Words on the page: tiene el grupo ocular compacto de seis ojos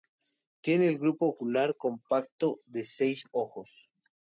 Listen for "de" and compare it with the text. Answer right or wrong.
right